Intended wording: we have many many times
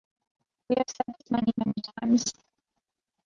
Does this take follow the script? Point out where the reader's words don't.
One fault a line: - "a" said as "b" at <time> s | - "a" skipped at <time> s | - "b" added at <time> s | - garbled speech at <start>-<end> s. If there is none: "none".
- "said this" added at 0.9 s